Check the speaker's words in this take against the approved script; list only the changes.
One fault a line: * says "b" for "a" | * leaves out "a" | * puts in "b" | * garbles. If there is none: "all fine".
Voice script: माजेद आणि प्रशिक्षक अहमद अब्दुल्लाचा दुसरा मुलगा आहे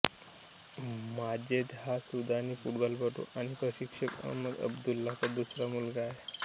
* puts in "हा सुदानी फुटबॉलपटू"